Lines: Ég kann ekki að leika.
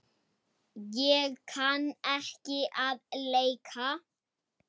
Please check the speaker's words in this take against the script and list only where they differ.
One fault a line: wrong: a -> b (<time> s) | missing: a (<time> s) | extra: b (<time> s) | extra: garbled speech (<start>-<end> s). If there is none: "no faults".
no faults